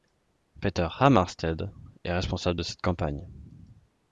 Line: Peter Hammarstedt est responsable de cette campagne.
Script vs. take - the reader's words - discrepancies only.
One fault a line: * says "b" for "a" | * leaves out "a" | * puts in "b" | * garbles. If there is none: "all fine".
all fine